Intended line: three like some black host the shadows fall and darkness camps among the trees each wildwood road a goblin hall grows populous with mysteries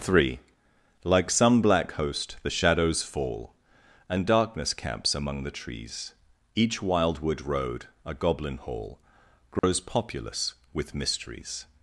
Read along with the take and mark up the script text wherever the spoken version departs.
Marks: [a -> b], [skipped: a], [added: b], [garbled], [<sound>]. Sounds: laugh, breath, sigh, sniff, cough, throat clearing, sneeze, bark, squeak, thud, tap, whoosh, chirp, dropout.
three like some black host the shadows fall and darkness camps among the trees each wildwood road a goblin hall grows [dropout] populous with mysteries